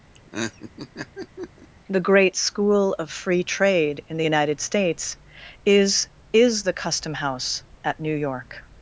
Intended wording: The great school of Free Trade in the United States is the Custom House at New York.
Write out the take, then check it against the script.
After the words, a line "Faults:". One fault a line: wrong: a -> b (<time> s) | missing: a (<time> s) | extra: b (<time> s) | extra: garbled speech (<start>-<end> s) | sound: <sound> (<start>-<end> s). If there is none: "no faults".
The great school of Free Trade in the United States is is the Custom House at New York.
Faults:
sound: laugh (0.1-1.7 s)
extra: is (6.3 s)